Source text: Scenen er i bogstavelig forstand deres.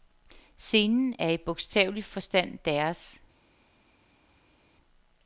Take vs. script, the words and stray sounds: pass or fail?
pass